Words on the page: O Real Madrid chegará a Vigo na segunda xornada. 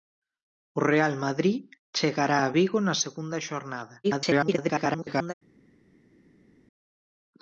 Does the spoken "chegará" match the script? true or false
true